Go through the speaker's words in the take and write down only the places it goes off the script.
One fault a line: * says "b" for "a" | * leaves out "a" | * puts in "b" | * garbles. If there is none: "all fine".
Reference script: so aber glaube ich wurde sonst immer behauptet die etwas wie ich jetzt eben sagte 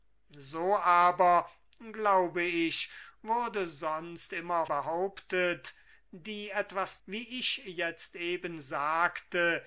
all fine